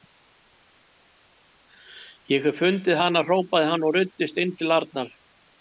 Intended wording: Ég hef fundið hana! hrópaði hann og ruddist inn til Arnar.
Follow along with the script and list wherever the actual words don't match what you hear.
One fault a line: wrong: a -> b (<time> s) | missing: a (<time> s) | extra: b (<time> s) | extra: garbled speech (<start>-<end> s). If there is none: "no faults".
no faults